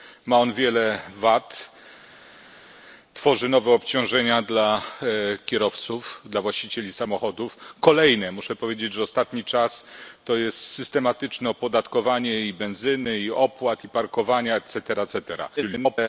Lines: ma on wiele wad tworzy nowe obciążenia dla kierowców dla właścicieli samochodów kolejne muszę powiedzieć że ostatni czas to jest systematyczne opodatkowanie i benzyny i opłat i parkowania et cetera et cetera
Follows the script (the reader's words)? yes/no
no